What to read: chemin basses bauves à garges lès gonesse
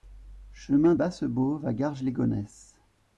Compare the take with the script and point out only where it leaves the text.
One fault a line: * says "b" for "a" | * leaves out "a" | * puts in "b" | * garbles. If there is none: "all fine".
all fine